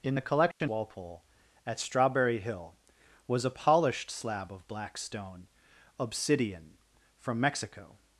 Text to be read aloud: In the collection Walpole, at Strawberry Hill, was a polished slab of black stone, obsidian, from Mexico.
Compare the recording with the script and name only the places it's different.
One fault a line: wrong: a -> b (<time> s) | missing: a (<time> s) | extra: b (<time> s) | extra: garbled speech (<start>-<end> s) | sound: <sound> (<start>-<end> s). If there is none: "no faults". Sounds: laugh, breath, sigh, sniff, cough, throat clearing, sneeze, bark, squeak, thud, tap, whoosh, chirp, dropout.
sound: dropout (0.5-0.6 s)